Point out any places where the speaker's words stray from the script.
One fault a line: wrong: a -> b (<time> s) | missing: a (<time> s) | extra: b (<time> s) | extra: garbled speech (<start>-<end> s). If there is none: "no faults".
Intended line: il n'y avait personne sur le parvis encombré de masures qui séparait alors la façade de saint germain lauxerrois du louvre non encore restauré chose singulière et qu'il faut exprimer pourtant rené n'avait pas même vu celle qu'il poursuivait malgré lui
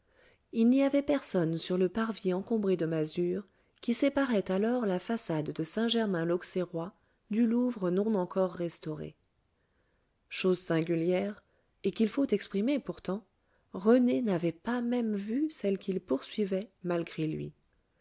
no faults